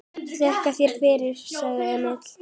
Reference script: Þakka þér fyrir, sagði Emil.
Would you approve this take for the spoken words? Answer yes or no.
yes